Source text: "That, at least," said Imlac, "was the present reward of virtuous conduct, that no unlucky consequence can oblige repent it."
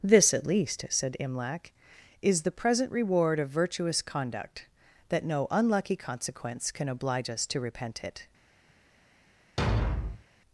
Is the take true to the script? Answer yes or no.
no